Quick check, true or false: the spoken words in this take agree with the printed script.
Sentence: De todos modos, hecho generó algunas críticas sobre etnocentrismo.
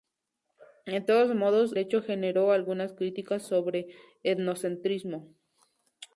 true